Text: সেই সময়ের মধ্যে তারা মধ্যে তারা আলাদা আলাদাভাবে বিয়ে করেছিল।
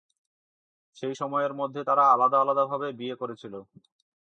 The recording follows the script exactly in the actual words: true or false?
false